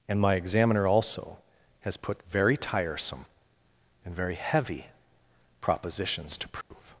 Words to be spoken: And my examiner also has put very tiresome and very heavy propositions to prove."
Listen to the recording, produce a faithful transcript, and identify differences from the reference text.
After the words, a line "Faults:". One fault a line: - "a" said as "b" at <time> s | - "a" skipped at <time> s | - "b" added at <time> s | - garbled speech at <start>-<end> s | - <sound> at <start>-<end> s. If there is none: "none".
And my examiner also has put very tiresome and very heavy propositions to prove."
Faults:
- dropout at 6.6-6.7 s